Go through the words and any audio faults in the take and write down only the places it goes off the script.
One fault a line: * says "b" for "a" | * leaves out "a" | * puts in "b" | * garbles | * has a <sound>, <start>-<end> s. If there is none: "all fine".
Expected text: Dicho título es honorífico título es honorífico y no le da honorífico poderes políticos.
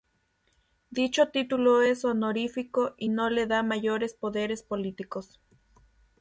* leaves out "título es honorífico"
* says "mayores" for "honorífico"